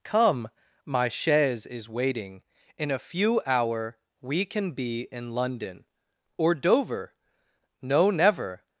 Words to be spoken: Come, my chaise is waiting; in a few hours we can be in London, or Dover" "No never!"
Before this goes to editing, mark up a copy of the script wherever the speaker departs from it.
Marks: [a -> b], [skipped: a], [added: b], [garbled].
Come, my chaise is waiting; in a few [hours -> hour] we can be in London, or Dover" "No never!"